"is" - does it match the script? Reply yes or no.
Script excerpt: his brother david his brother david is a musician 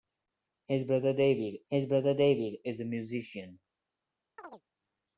yes